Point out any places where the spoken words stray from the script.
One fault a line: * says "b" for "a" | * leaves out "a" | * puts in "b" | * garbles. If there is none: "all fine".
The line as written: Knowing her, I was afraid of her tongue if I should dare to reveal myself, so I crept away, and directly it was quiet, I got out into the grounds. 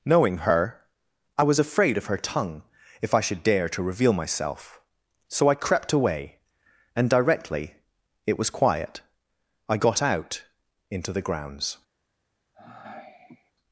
all fine